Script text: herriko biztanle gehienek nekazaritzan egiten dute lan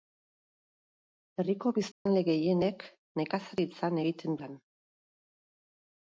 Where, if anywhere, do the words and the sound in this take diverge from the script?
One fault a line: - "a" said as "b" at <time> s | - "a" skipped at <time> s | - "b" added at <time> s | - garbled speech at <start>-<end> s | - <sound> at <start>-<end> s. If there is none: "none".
- dropout at 1.9-2.1 s
- "dute" skipped at 4.4 s